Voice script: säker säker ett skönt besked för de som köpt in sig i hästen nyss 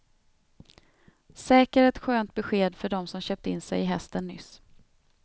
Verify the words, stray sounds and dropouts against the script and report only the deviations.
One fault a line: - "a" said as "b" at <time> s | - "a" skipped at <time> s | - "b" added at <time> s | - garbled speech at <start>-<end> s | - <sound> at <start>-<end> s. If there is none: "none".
- "säker" skipped at 1.8 s